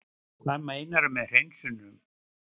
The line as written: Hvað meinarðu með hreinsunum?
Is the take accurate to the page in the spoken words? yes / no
yes